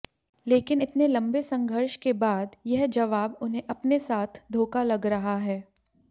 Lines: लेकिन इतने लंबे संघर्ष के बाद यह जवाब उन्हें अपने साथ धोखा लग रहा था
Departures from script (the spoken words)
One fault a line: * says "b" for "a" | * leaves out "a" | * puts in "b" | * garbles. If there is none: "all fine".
* says "है" for "था"